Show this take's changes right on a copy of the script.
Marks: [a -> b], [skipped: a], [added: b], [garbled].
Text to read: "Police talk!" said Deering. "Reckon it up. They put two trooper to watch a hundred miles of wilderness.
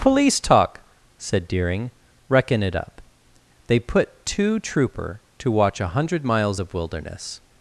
"Police talk!" said Deering. "Reckon it up. They put two trooper to watch a hundred miles of wilderness.